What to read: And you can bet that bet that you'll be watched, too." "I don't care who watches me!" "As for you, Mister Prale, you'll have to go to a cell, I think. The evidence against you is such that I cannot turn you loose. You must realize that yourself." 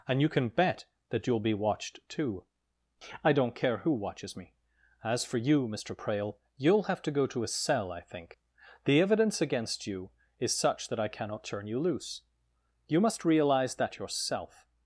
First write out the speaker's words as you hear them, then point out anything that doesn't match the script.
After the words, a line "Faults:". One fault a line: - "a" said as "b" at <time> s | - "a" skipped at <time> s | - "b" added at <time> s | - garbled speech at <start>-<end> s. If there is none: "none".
And you can bet that you'll be watched, too." "I don't care who watches me!" "As for you, Mister Prale, you'll have to go to a cell, I think. The evidence against you is such that I cannot turn you loose. You must realize that yourself."
Faults:
- "bet that" skipped at 1.3 s